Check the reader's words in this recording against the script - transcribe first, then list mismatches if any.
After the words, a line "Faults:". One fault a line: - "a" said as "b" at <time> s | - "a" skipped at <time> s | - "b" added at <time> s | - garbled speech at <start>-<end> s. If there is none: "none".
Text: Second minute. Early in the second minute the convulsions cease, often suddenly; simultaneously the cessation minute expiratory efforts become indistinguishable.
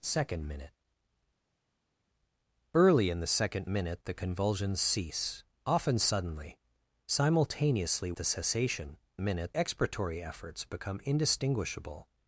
Second minute. Early in the second minute the convulsions cease, often suddenly; simultaneously the cessation minute expiratory efforts become indistinguishable.
Faults:
none